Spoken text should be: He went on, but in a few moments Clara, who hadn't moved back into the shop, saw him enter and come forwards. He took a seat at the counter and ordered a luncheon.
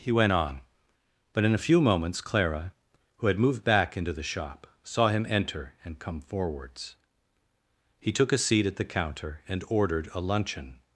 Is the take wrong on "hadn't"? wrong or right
wrong